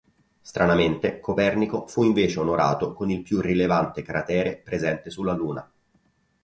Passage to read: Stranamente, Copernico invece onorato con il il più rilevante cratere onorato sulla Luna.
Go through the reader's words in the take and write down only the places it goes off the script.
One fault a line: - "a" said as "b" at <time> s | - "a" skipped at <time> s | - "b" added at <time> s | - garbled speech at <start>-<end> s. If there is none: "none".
- "fu" added at 1.9 s
- "il" skipped at 3.2 s
- "onorato" said as "presente" at 4.6 s